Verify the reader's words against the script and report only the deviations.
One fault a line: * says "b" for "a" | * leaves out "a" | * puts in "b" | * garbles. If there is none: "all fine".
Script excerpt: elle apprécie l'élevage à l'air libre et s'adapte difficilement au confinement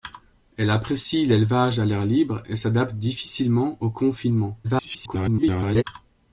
* garbles